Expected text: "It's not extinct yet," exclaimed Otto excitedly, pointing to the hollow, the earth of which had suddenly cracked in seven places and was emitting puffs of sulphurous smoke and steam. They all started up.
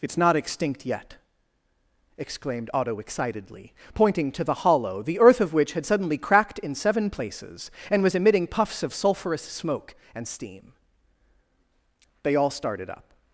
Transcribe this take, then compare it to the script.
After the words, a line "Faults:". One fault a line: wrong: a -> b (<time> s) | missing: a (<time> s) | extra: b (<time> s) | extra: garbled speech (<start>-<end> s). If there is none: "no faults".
"It's not extinct yet," exclaimed Otto excitedly, pointing to the hollow, the earth of which had suddenly cracked in seven places and was emitting puffs of sulphurous smoke and steam. They all started up.
Faults:
no faults